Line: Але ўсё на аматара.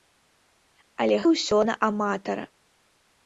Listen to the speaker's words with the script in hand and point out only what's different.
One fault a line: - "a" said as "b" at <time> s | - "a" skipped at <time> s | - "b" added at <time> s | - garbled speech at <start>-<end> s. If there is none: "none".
none